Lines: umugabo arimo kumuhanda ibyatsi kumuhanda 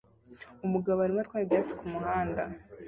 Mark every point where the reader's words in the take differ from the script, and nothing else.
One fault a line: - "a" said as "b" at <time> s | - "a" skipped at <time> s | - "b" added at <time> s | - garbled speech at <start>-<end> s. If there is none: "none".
- "kumuhanda" said as "atwara" at 1.2 s